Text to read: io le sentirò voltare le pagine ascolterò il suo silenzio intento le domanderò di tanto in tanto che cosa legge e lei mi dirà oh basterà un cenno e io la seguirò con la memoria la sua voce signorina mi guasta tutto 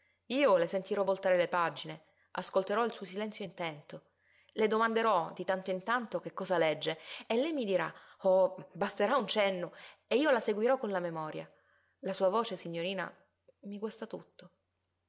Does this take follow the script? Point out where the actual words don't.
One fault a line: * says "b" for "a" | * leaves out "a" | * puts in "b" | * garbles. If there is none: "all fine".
all fine